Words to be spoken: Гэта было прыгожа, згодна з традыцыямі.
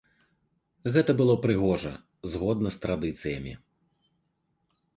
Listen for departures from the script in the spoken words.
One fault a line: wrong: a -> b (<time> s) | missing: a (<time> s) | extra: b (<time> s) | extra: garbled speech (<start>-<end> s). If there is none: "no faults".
no faults